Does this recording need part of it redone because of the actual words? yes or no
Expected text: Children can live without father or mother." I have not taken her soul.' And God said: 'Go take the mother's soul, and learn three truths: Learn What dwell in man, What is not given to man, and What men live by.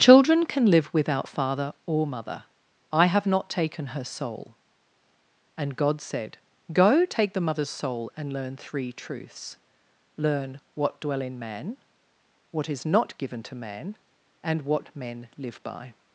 no